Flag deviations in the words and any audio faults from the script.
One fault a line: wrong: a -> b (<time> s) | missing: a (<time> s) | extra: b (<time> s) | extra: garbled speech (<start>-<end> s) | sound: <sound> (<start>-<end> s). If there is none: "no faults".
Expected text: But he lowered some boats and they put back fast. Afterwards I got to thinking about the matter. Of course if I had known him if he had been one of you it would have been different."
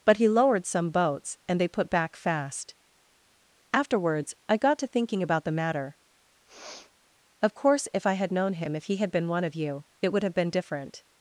sound: sniff (6.5-6.9 s)